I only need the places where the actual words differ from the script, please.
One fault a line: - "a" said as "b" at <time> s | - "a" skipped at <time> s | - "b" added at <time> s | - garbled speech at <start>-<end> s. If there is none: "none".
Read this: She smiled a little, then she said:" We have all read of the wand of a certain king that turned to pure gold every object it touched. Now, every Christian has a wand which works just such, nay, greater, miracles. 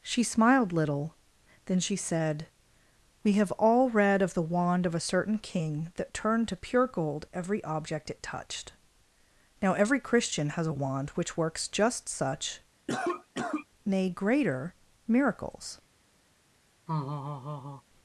- "a" skipped at 0.7 s